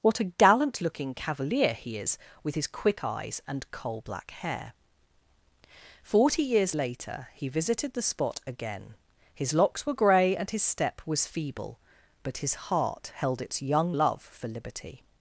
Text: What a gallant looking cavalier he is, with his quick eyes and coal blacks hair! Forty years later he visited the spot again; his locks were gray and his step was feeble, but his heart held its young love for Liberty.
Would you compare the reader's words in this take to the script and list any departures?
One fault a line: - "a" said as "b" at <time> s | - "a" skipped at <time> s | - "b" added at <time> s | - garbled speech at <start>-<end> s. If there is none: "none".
- "blacks" said as "black" at 4.0 s